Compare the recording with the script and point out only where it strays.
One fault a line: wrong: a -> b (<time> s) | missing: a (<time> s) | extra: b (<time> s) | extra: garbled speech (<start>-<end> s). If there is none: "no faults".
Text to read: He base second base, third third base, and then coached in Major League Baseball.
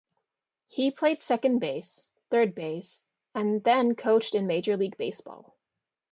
wrong: base -> played (0.9 s)
missing: third (2.5 s)